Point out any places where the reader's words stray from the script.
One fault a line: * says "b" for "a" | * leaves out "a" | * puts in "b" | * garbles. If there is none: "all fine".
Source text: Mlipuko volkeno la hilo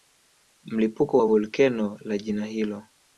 * puts in "wa"
* puts in "jina"